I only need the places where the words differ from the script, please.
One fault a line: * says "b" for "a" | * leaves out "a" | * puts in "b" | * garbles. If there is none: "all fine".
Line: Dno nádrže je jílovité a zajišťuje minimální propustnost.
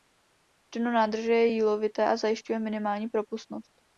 all fine